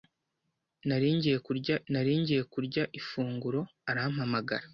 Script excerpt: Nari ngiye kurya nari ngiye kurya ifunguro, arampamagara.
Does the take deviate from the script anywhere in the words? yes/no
no